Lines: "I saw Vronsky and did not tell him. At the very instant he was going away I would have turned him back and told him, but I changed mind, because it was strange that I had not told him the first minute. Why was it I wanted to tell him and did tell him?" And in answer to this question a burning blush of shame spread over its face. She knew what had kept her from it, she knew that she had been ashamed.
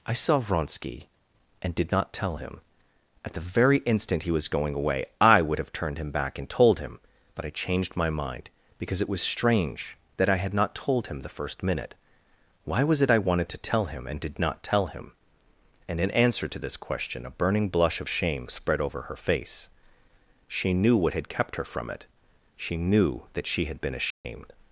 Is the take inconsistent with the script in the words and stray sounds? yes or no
yes